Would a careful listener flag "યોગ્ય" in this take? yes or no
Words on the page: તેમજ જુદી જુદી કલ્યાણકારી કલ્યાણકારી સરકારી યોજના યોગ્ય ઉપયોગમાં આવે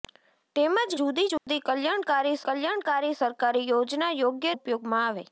no